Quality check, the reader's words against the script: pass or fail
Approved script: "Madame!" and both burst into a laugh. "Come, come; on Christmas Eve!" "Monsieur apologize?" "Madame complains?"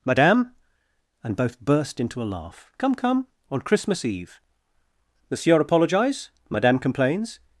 pass